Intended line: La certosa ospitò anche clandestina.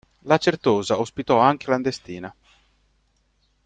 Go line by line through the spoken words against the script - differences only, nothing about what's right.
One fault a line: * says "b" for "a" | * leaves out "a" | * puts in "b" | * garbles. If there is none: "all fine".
all fine